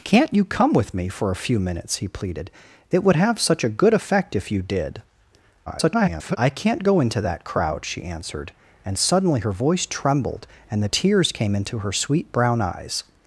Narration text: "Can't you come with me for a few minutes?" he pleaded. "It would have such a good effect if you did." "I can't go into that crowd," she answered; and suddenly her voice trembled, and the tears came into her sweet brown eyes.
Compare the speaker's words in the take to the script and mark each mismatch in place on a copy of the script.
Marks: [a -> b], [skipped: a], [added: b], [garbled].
"Can't you come with me for a few minutes?" he pleaded. "It would have such a good effect if you did." [garbled] "I can't go into that crowd," she answered; and suddenly her voice trembled, and the tears came into her sweet brown eyes.